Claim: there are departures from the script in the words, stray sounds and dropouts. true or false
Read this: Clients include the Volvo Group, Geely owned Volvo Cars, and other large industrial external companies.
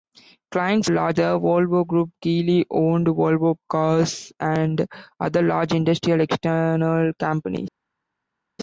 true